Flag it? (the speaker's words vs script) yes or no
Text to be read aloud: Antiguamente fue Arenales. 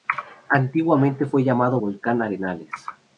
yes